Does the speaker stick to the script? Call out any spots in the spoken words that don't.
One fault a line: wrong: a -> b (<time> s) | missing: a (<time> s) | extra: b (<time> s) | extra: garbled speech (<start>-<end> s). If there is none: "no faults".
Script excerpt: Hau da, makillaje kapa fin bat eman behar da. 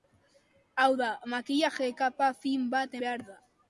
missing: eman (3.0 s)